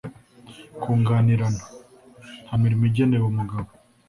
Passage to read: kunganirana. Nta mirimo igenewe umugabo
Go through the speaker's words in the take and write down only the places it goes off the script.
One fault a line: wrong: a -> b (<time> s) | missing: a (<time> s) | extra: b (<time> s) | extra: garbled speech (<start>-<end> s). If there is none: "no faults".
no faults